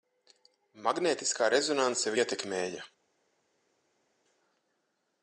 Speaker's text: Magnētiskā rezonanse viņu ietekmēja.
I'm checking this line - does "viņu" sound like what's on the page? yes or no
no